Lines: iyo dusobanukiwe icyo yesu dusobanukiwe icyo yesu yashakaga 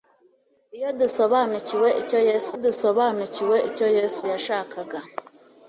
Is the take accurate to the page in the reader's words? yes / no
yes